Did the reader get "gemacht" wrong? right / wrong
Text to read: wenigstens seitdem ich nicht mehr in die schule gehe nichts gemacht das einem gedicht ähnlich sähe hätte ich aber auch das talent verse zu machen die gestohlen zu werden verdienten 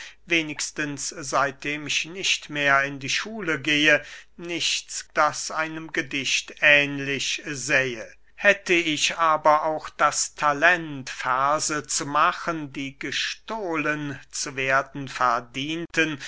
wrong